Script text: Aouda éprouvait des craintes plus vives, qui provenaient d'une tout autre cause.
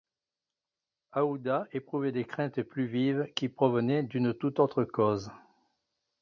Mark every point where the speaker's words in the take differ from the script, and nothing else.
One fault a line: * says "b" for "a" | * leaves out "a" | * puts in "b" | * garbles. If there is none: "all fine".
all fine